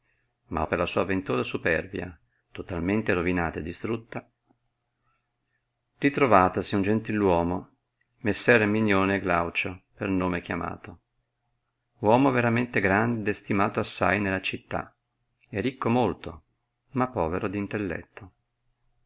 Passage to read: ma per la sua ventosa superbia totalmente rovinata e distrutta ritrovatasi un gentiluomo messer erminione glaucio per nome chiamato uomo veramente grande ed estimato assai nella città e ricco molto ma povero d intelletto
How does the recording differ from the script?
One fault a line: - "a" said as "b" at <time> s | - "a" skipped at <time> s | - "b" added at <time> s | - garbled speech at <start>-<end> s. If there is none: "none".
none